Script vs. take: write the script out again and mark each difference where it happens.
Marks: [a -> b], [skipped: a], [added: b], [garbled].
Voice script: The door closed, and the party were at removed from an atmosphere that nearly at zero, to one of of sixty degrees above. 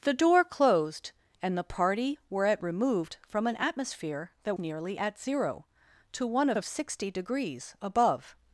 The door closed, and the party were at removed from an atmosphere that nearly at zero, to one of of sixty degrees above.